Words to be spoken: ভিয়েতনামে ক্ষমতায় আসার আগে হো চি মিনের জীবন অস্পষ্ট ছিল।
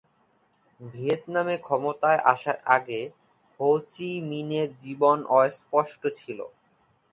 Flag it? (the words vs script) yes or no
no